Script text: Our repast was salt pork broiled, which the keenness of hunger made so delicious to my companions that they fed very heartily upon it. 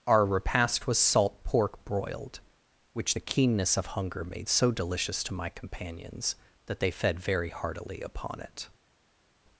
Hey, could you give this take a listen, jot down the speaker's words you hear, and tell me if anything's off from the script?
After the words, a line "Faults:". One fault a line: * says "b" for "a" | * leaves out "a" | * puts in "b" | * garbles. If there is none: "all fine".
Our repast was salt pork broiled, which the keenness of hunger made so delicious to my companions that they fed very heartily upon it.
Faults:
all fine